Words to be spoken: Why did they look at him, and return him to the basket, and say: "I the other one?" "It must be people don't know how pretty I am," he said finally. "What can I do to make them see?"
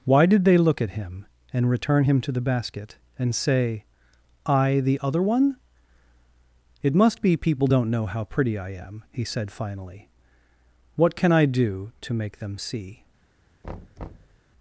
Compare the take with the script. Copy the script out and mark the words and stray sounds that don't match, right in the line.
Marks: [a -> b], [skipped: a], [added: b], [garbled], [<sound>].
Why did they look at him, and return him to the basket, and say: "I the other one?" "It must be people don't know how pretty I am," he said finally. "What can I do to make them see?" [thud]